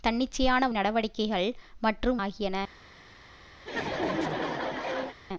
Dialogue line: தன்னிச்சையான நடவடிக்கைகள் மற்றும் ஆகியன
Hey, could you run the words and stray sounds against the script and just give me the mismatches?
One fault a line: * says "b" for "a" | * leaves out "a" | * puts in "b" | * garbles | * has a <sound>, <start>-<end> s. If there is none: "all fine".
* has a laugh, 3.6-5.2 s